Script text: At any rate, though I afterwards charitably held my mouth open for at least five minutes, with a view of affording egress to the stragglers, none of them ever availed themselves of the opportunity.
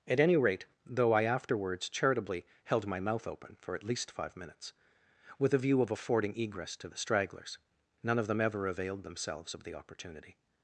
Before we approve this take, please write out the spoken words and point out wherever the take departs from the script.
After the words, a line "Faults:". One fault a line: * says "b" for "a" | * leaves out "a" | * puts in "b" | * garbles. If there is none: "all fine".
At any rate, though I afterwards charitably held my mouth open for at least five minutes, with a view of affording egress to the stragglers, none of them ever availed themselves of the opportunity.
Faults:
all fine